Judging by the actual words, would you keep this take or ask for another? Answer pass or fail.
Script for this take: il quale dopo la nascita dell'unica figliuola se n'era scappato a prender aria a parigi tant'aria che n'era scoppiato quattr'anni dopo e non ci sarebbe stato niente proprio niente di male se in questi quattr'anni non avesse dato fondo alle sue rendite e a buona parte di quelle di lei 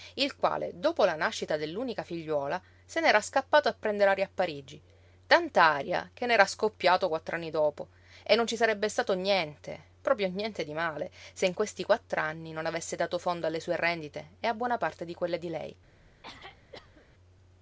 pass